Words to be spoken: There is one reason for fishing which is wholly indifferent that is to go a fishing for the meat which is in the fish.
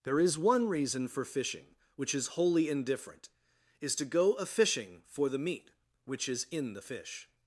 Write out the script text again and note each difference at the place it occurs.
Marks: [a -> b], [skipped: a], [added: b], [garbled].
There is one reason for fishing which is wholly indifferent [skipped: that] is to go a fishing for the meat which is in the fish.